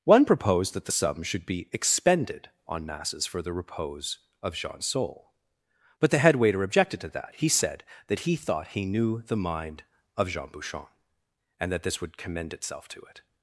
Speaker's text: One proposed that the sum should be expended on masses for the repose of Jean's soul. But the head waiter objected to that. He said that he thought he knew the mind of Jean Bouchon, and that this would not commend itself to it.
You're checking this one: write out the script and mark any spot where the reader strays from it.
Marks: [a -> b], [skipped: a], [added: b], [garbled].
One proposed that the sum should be expended on masses for the repose of Jean's soul. But the head waiter objected to that. He said that he thought he knew the mind of Jean Bouchon, and that this would [skipped: not] commend itself to it.